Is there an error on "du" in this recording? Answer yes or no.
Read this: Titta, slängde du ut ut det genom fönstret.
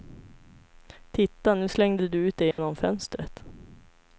no